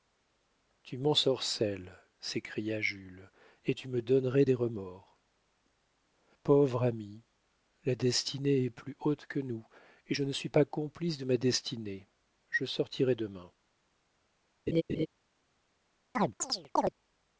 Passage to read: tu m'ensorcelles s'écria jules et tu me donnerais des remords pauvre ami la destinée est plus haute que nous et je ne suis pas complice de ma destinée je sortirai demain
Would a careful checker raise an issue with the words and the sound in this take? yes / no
yes